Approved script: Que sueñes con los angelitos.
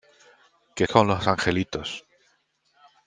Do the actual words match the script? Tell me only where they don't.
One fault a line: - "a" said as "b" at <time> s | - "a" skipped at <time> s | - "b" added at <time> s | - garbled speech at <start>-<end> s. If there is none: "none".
- "sueñes" skipped at 0.9 s